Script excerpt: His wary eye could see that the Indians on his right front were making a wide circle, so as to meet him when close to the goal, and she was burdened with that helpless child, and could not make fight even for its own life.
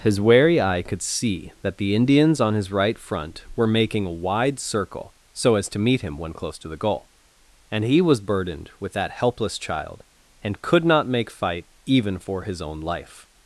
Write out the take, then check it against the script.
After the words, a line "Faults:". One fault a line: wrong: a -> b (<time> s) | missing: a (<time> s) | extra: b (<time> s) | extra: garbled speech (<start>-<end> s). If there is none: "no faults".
His wary eye could see that the Indians on his right front were making a wide circle, so as to meet him when close to the goal, and he was burdened with that helpless child, and could not make fight even for his own life.
Faults:
wrong: she -> he (7.8 s)
wrong: its -> his (12.4 s)